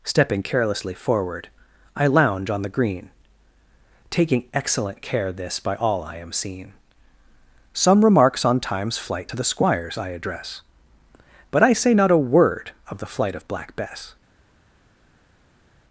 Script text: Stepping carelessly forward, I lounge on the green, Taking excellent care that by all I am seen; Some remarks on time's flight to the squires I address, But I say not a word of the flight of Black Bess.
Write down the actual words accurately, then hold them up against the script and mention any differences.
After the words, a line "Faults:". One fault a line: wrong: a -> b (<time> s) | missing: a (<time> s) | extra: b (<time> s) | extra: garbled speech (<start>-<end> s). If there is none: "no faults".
Stepping carelessly forward, I lounge on the green, Taking excellent care this by all I am seen; Some remarks on time's flight to the squires I address, But I say not a word of the flight of Black Bess.
Faults:
wrong: that -> this (5.3 s)